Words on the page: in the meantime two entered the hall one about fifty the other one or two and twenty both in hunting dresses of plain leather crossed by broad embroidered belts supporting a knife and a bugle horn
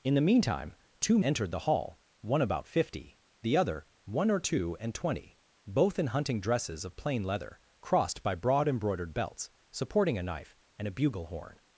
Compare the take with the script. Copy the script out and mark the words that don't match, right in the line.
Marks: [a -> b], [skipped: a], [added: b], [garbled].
in the meantime two entered the hall one about fifty the other one or two and twenty both in hunting dresses of plain leather crossed by broad embroidered belts supporting a knife and a bugle horn